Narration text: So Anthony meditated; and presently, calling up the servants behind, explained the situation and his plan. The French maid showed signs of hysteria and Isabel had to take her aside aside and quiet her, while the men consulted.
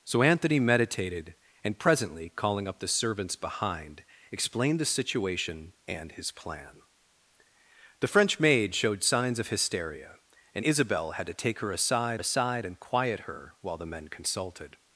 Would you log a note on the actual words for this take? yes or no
no